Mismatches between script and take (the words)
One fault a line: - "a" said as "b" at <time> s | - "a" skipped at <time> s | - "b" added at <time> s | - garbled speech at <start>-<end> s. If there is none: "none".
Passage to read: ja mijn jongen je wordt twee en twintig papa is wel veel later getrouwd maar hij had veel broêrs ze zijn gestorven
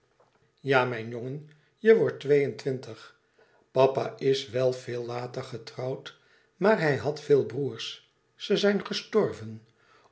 none